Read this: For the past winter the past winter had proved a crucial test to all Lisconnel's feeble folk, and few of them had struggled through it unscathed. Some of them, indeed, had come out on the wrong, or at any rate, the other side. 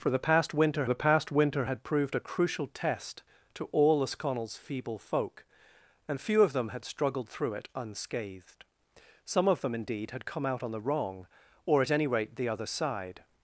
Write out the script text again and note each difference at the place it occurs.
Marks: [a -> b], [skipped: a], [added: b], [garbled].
For the past winter the past winter had proved a crucial test to all Lisconnel's feeble folk, and few of them had struggled through it unscathed. Some of them, indeed, had come out on the wrong, or at any rate, the other side.